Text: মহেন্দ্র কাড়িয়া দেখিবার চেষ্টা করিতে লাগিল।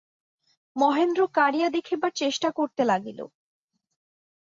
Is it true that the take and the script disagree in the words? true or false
false